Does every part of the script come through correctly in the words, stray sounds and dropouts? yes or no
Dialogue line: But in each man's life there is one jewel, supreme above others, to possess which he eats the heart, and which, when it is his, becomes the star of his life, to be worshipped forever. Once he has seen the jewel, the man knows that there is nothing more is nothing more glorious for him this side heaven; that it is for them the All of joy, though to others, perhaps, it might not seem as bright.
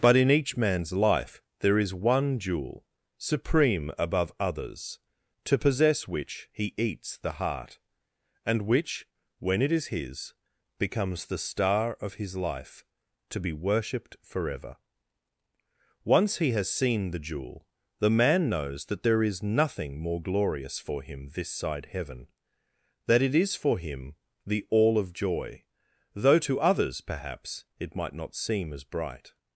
no